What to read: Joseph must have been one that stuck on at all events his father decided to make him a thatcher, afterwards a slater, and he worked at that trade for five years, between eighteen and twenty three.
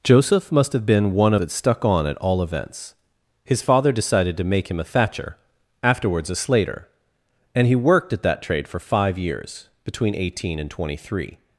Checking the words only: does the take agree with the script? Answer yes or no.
yes